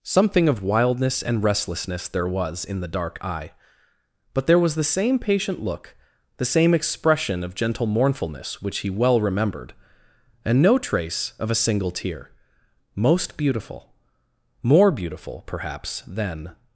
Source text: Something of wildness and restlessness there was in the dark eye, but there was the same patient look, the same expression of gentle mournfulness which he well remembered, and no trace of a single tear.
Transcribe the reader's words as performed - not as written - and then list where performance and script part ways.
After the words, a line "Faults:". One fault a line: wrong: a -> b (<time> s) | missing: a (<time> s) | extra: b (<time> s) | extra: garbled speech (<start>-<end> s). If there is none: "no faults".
Something of wildness and restlessness there was in the dark eye, but there was the same patient look, the same expression of gentle mournfulness which he well remembered, and no trace of a single tear. Most beautiful more beautiful, perhaps, than
Faults:
extra: Most beautiful more beautiful perhaps than (12.9 s)